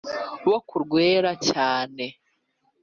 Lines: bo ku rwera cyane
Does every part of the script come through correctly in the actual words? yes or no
yes